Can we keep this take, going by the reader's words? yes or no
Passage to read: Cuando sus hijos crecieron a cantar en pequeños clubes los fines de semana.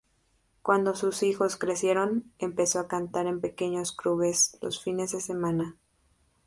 no